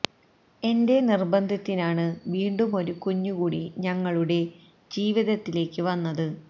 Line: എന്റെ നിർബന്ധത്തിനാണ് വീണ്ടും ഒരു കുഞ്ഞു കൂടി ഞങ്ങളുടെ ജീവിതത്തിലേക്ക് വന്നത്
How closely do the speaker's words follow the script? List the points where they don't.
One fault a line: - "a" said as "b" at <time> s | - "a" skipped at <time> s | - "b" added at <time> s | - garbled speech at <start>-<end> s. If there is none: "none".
none